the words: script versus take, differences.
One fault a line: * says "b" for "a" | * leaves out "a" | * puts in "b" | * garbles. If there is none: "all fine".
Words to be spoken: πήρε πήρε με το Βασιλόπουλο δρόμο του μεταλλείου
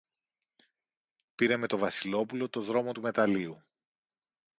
* leaves out "πήρε"
* puts in "το"